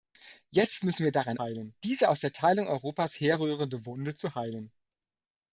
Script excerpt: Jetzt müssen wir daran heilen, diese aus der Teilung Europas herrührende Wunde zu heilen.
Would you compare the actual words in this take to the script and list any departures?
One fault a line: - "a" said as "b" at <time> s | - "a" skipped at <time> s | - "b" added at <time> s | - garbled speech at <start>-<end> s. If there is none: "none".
none